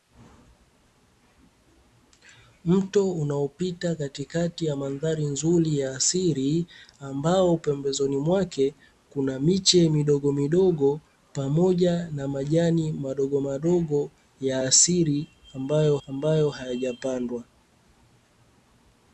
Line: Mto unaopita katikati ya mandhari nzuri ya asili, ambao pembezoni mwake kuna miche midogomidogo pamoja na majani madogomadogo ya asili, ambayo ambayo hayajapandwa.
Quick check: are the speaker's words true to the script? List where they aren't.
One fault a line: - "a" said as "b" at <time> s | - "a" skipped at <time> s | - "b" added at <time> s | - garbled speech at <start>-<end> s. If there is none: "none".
none